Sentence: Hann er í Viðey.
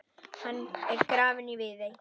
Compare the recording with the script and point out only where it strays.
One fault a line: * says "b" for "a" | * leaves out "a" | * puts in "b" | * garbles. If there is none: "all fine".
* puts in "grafinn"